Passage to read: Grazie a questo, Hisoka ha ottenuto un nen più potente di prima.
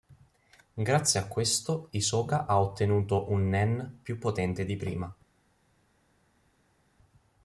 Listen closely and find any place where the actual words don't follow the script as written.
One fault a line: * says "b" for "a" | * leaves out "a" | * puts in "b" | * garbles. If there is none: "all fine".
all fine